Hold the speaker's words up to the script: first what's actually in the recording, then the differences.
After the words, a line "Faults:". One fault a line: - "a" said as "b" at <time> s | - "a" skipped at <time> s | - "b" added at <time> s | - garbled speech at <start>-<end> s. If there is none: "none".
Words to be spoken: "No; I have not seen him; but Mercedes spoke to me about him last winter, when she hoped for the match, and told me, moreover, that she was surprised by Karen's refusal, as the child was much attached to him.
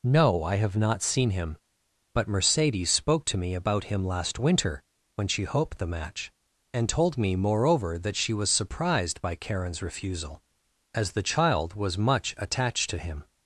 "No; I have not seen him; but Mercedes spoke to me about him last winter, when she hoped the match, and told me, moreover, that she was surprised by Karen's refusal, as the child was much attached to him.
Faults:
- "for" skipped at 5.8 s